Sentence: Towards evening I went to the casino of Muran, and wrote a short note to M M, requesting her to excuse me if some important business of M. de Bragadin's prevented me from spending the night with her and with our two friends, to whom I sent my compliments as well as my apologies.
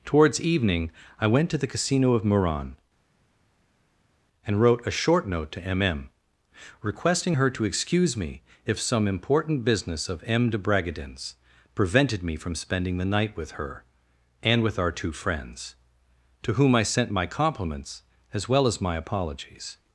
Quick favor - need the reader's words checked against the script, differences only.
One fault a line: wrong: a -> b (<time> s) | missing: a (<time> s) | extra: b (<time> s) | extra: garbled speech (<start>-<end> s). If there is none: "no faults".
no faults